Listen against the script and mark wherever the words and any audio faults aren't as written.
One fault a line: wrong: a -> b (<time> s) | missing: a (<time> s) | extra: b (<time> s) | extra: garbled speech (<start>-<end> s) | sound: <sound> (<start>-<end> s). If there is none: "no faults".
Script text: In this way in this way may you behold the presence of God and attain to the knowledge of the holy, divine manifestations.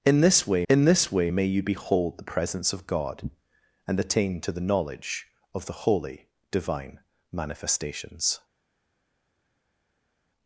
no faults